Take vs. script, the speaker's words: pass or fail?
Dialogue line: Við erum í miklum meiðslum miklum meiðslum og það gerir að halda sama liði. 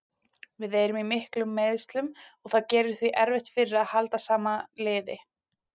fail